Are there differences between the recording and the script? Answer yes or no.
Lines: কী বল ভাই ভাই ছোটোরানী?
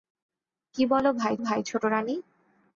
no